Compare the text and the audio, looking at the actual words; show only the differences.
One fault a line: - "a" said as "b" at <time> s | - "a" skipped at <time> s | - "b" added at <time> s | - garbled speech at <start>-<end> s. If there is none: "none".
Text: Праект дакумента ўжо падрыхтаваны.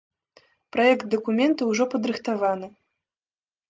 none